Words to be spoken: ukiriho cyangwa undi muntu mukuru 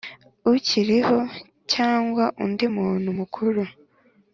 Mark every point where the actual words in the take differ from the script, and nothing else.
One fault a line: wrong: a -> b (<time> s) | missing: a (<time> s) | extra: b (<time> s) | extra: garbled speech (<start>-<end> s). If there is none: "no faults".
no faults